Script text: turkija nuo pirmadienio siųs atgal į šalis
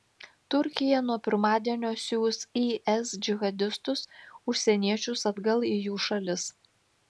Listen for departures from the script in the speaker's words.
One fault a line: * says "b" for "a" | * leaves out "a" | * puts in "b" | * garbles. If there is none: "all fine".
* puts in "is džihadistus užsieniečius"
* puts in "jų"